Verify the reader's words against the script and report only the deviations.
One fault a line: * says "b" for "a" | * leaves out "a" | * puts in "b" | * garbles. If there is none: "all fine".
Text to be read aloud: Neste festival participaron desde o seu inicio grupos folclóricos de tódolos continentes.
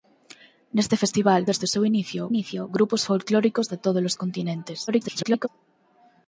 * leaves out "participaron"
* puts in "inicio"
* garbles